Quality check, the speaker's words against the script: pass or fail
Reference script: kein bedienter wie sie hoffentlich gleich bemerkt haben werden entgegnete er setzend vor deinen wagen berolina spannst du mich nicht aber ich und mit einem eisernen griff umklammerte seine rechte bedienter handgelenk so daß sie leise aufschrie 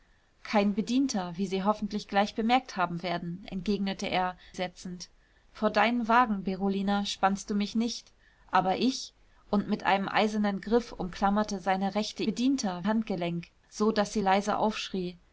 pass